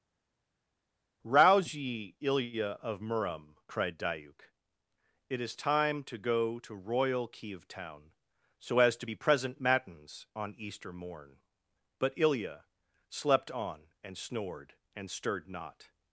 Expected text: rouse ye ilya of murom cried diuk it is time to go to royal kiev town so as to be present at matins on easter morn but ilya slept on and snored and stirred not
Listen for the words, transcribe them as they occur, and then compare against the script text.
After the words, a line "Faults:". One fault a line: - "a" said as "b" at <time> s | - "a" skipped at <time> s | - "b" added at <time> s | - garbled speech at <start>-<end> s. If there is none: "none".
rouse ye ilya of murom cried diuk it is time to go to royal kiev town so as to be present matins on easter morn but ilya slept on and snored and stirred not
Faults:
- "at" skipped at 9.6 s